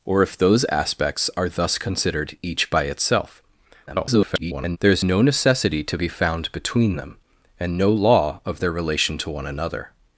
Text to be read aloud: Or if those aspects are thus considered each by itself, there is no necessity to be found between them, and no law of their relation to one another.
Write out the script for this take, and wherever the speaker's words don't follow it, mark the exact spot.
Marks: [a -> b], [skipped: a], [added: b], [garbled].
Or if those aspects are thus considered each by itself, [garbled] there is no necessity to be found between them, and no law of their relation to one another.